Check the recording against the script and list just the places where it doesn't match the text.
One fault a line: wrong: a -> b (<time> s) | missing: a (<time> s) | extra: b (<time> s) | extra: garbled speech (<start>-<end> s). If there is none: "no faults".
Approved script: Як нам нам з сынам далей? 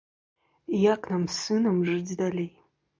missing: нам (1.3 s)
extra: жыць (1.9 s)